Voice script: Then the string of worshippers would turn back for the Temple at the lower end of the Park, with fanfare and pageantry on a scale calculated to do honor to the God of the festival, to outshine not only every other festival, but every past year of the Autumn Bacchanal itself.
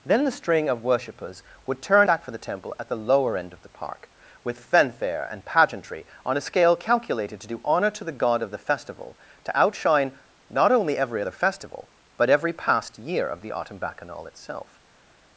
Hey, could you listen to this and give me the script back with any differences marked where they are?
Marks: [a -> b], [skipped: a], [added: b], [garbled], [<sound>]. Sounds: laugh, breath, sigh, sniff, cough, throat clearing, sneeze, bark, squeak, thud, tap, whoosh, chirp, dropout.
Then the string of worshippers would turn back for the Temple at the lower end of the Park, with fanfare and pageantry on a scale calculated to do honor to the God of the festival, to outshine not only every other festival, but every past year of the Autumn Bacchanal itself.